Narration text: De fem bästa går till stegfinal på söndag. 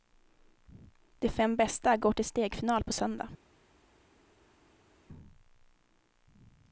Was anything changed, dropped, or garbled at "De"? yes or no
no